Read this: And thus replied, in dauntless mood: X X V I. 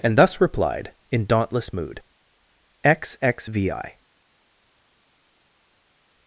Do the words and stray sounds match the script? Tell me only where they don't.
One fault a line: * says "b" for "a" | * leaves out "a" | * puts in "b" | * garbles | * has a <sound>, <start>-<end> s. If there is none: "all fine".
all fine